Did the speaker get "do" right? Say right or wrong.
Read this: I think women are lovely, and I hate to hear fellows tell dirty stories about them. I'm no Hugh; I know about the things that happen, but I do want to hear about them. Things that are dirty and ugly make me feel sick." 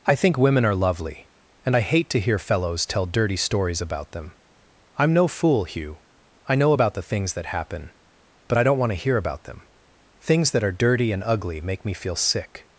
wrong